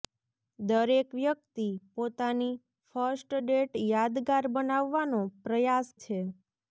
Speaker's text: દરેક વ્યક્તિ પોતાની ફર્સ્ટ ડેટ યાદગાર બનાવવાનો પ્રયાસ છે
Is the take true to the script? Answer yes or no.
yes